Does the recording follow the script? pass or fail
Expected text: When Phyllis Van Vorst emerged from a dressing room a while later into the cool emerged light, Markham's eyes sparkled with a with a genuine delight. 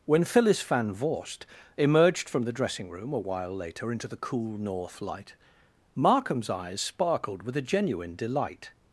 fail